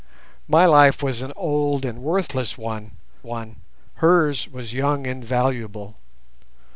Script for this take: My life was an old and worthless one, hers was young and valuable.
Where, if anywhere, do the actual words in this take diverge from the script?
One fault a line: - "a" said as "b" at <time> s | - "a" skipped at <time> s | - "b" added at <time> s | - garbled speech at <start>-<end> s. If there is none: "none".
- "one" added at 3.2 s